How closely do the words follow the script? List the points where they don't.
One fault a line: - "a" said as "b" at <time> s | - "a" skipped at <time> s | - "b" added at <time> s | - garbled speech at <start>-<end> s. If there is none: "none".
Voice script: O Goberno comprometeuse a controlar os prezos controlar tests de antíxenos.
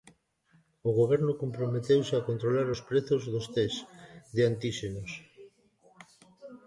- "controlar" said as "dos" at 3.3 s